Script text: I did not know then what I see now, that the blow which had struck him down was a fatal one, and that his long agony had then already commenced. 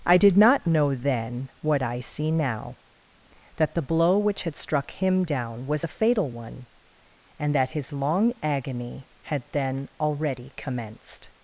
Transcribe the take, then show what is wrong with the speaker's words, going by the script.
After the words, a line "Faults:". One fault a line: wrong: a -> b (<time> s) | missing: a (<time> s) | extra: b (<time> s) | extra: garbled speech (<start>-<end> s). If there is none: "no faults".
I did not know then what I see now, that the blow which had struck him down was a fatal one, and that his long agony had then already commenced.
Faults:
no faults